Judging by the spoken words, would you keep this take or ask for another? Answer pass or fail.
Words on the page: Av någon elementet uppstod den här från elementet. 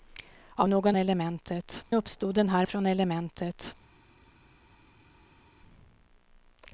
pass